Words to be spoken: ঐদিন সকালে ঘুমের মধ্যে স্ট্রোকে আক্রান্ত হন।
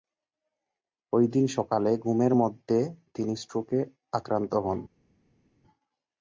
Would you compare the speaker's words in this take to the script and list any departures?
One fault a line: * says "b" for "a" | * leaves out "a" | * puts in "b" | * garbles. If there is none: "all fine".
* puts in "তিনি"